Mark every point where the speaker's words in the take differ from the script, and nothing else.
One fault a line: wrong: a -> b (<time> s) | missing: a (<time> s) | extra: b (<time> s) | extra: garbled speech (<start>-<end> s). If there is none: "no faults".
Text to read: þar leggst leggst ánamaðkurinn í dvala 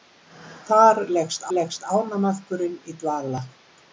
no faults